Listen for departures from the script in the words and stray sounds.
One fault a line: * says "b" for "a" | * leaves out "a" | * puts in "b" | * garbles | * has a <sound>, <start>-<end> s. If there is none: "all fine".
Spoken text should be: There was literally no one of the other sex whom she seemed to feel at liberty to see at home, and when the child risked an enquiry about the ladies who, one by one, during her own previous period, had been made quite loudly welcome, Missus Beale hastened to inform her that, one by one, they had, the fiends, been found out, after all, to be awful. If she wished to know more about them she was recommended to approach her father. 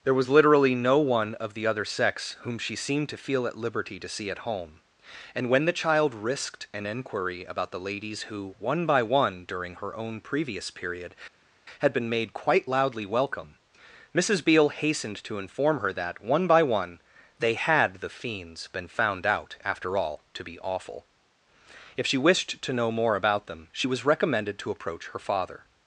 all fine